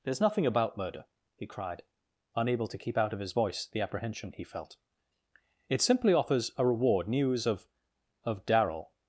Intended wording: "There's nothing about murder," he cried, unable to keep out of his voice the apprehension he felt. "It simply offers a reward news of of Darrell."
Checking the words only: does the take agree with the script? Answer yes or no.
yes